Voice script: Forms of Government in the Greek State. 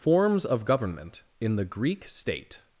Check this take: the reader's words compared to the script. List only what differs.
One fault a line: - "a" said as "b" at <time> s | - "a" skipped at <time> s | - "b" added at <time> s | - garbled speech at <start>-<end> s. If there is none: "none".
none